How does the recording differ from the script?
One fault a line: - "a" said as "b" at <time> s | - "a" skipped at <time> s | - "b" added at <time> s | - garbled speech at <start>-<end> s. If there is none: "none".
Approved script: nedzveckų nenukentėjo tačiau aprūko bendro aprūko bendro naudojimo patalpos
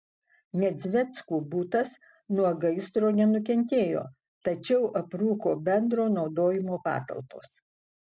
- "butas nuo gaisro" added at 1.5 s
- "aprūko bendro" skipped at 6.1 s